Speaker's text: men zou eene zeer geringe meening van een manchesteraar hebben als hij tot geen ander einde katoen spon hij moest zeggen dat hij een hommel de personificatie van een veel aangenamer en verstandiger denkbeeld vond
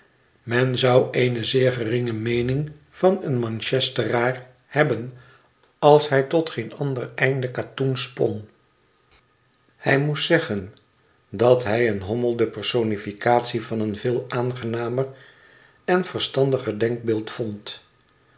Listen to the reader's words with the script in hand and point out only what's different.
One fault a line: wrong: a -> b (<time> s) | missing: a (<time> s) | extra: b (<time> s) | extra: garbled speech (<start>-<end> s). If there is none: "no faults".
no faults